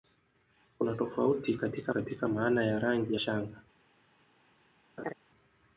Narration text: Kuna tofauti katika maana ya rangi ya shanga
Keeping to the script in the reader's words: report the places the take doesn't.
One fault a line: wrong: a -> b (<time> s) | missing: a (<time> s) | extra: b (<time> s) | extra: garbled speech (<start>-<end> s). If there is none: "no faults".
extra: katika (1.9 s)
missing: ya (3.1 s)